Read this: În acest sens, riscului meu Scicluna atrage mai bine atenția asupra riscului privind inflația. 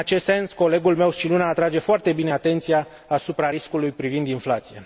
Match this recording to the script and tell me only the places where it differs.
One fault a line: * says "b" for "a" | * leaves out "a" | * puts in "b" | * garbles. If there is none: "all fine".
* says "colegul" for "riscului"
* says "foarte" for "mai"